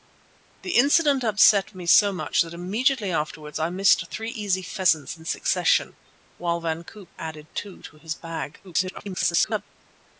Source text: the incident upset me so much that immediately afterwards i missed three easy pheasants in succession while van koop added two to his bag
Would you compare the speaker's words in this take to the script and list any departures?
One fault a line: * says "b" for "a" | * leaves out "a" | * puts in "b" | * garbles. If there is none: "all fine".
* garbles